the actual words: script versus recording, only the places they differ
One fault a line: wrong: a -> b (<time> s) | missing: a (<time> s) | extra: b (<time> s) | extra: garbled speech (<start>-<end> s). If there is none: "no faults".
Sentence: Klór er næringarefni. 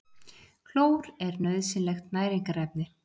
extra: nauðsynlegt (1.5 s)